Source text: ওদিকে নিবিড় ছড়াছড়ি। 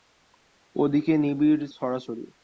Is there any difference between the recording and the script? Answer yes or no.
no